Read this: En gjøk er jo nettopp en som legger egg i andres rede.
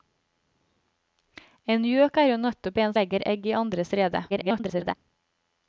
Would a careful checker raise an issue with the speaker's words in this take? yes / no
yes